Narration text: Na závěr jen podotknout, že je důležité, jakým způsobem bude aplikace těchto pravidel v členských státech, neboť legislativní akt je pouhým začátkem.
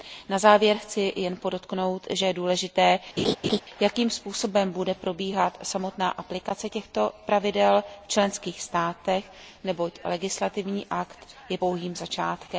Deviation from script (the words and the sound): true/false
true